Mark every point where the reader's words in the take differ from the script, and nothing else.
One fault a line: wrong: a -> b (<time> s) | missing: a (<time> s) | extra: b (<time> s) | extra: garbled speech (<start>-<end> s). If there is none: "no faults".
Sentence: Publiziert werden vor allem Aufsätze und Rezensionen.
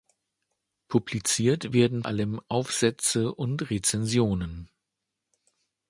missing: vor (2.0 s)